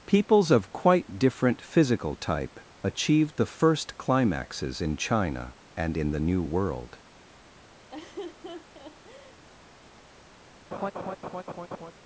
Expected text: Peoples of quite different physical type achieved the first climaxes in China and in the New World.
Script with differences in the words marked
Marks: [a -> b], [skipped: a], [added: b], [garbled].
Peoples of quite different physical type achieved the first climaxes in China and in the New World.